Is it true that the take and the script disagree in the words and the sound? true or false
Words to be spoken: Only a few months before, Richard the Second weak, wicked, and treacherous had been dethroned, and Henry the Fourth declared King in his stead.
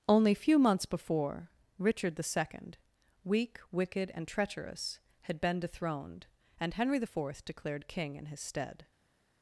true